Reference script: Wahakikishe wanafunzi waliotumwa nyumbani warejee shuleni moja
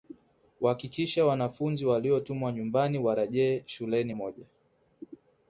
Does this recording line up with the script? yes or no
yes